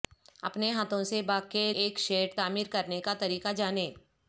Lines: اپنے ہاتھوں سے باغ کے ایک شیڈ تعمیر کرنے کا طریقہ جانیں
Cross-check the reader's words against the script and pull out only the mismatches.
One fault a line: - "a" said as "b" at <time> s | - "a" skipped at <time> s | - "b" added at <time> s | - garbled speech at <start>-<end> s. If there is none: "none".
none